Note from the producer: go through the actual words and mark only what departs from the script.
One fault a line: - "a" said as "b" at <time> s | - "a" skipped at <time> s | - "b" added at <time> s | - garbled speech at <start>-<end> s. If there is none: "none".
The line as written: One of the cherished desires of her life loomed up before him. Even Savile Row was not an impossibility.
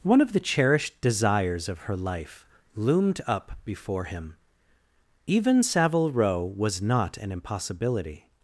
none